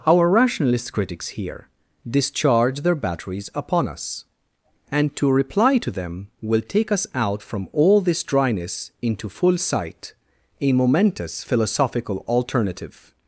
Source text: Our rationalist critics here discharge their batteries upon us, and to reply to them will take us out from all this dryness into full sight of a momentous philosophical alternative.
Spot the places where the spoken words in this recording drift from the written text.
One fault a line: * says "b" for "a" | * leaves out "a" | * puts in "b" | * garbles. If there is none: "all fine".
* leaves out "of"